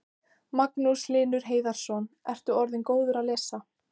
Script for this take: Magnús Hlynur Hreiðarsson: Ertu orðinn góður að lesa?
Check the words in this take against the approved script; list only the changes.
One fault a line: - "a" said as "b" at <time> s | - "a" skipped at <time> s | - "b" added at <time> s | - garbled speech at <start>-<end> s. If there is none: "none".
none